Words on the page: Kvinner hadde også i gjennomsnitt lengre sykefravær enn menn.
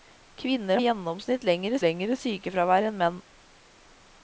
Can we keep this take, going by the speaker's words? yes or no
no